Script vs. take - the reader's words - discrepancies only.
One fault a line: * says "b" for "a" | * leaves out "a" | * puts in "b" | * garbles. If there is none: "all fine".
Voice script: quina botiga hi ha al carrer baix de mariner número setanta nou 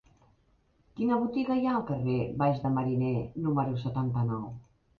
all fine